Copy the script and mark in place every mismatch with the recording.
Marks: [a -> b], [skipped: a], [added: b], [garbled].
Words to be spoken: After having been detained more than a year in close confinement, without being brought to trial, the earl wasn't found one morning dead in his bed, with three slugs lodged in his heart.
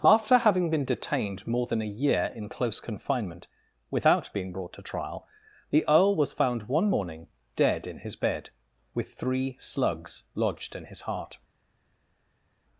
After having been detained more than a year in close confinement, without being brought to trial, the earl [wasn't -> was] found one morning dead in his bed, with three slugs lodged in his heart.